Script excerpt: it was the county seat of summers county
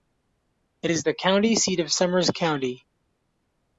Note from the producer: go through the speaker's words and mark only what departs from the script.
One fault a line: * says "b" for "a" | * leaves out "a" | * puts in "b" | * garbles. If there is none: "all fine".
* says "is" for "was"